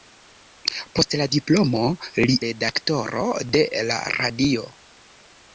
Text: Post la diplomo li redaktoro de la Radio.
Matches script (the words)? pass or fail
pass